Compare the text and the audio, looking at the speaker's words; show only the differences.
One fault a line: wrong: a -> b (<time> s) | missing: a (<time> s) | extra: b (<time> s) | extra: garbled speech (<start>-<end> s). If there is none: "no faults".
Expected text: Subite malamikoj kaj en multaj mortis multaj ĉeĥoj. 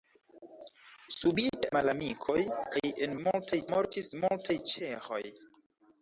no faults